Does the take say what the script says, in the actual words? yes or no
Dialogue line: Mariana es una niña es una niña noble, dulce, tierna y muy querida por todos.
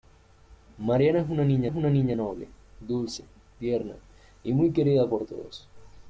yes